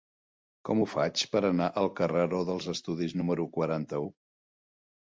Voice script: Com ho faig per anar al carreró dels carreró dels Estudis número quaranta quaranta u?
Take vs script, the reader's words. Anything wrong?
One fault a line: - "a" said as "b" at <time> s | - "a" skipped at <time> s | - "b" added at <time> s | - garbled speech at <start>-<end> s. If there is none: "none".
- "carreró dels" skipped at 2.7 s
- "quaranta" skipped at 4.0 s